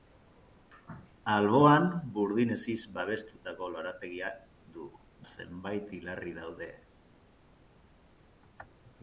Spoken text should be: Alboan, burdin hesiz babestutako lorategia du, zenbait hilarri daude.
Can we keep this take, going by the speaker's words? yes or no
yes